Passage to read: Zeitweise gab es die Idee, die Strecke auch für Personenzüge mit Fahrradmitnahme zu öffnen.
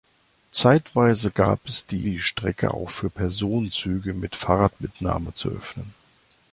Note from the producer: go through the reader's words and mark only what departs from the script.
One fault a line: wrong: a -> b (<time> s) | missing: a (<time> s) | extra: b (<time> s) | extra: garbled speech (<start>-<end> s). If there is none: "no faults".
missing: Idee (2.1 s)